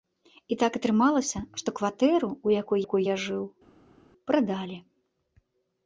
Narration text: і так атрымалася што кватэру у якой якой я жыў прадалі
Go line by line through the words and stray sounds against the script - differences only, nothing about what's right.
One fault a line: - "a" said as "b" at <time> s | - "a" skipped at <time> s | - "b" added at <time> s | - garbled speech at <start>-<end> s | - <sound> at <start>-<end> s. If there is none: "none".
none